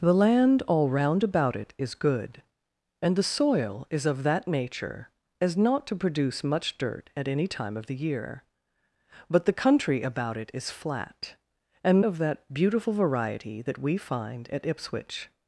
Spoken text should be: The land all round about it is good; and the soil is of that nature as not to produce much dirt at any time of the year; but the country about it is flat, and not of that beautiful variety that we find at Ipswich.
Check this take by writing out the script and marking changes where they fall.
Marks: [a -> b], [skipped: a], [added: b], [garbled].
The land all round about it is good; and the soil is of that nature as not to produce much dirt at any time of the year; but the country about it is flat, and [skipped: not] of that beautiful variety that we find at Ipswich.